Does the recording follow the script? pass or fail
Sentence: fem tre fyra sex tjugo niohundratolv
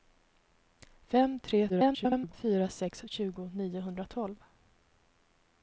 fail